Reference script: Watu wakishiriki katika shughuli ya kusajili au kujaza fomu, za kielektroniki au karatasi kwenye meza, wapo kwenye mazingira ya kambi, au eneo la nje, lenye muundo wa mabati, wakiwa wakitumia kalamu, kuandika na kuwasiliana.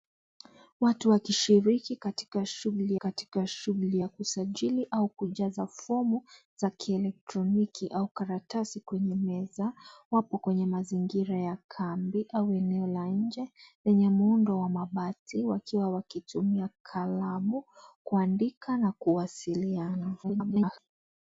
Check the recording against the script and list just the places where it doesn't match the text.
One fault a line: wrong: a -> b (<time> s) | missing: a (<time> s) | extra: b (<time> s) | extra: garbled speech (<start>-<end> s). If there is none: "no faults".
extra: katika shughuli (2.9 s)
extra: garbled speech (20.2-20.8 s)